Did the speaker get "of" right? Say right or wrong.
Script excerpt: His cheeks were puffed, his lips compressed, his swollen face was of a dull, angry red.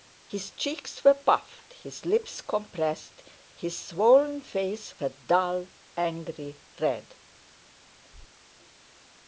wrong